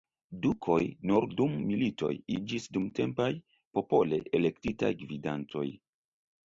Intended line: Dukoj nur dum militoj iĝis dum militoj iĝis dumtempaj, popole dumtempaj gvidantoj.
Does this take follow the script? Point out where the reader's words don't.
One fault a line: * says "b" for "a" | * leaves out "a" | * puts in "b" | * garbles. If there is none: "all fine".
* leaves out "dum militoj iĝis"
* says "elektitaj" for "dumtempaj"